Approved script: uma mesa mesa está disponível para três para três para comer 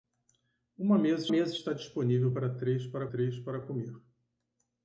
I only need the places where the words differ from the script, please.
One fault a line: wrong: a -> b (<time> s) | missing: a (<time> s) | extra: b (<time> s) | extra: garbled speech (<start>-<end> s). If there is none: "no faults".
no faults